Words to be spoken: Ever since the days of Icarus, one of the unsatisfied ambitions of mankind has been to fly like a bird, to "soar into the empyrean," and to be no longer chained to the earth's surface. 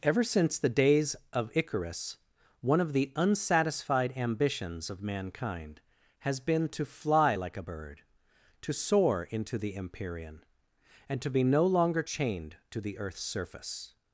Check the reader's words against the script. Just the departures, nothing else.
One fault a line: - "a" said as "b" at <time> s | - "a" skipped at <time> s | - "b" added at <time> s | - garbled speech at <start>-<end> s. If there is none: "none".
none